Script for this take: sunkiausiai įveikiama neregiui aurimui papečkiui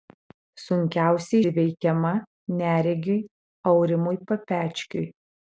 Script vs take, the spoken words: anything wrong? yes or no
no